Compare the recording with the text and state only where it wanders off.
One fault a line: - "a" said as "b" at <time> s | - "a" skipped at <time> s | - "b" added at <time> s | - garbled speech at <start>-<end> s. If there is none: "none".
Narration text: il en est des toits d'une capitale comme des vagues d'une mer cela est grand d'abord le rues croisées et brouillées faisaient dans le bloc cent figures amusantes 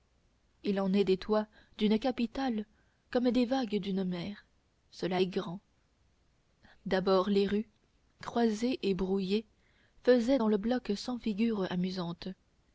- "le" said as "les" at 7.3 s